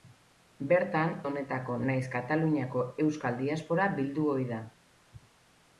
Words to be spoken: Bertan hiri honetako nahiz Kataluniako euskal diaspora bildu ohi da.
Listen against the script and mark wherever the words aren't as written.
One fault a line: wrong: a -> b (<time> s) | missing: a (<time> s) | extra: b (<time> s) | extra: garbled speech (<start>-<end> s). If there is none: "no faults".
missing: hiri (1.1 s)